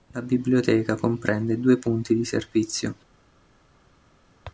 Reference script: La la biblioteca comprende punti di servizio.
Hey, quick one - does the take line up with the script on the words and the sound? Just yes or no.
no